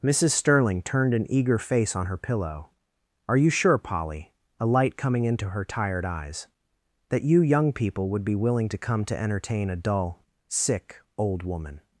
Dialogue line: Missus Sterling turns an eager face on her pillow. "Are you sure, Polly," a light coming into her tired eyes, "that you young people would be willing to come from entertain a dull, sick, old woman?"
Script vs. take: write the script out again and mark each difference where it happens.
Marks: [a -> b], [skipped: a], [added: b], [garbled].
Missus Sterling [turns -> turned] an eager face on her pillow. "Are you sure, Polly," a light coming into her tired eyes, "that you young people would be willing to come [from -> to] entertain a dull, sick, old woman?"